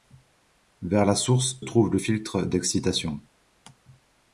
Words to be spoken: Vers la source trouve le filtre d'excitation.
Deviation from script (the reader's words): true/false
false